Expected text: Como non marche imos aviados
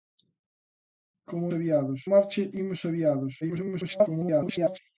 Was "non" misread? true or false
true